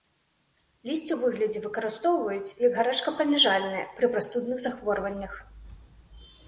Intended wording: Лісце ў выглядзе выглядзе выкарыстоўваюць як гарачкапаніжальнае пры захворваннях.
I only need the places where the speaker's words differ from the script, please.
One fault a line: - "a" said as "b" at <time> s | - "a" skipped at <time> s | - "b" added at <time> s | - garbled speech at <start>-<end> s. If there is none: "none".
- "выглядзе" skipped at 1.6 s
- "прастудных" added at 4.2 s